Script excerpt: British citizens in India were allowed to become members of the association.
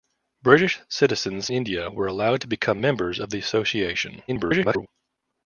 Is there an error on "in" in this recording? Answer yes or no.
yes